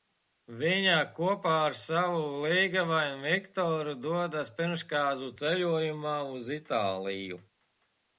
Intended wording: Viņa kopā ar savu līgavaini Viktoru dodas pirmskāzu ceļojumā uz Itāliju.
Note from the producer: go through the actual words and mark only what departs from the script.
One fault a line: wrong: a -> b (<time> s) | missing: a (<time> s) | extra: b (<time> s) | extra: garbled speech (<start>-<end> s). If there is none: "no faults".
no faults